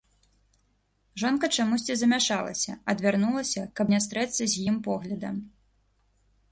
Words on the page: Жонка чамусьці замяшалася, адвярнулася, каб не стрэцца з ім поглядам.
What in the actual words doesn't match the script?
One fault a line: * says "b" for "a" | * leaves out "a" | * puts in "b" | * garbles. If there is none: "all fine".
all fine